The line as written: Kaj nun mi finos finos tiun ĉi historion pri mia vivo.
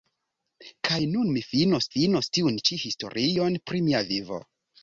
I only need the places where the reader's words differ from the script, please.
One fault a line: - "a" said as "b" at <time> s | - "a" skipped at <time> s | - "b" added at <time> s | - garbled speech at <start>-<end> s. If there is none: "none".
none